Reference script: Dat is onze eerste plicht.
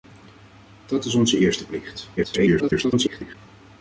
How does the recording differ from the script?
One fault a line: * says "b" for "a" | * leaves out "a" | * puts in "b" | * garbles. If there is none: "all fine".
* garbles